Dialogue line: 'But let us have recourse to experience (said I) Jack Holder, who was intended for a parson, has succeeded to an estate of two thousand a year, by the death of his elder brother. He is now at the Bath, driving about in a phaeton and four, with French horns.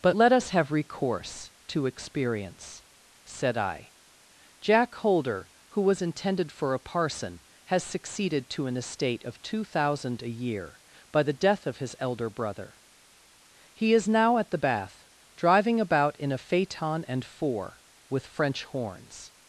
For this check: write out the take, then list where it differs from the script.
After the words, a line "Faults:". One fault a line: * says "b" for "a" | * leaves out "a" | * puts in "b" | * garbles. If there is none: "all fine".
'But let us have recourse to experience (said I) Jack Holder, who was intended for a parson, has succeeded to an estate of two thousand a year, by the death of his elder brother. He is now at the Bath, driving about in a phaeton and four, with French horns.
Faults:
all fine